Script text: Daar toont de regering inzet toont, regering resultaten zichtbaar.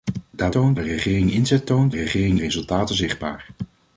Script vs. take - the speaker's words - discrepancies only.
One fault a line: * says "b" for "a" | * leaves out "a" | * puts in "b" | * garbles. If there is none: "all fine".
all fine